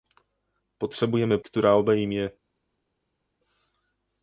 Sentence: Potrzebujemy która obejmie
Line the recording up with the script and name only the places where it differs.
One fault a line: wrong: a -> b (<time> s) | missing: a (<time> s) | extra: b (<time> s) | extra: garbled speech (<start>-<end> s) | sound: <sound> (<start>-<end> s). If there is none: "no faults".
no faults